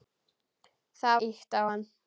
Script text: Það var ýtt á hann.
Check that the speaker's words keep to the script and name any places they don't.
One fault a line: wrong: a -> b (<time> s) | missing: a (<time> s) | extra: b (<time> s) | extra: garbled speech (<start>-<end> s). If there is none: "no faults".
missing: var (1.2 s)